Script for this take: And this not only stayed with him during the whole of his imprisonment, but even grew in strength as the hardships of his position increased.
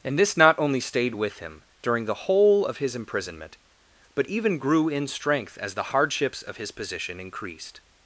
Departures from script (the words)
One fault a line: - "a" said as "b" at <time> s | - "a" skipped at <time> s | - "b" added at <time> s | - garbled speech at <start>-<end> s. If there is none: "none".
none